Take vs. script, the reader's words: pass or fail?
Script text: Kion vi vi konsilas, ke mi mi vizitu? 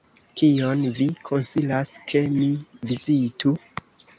fail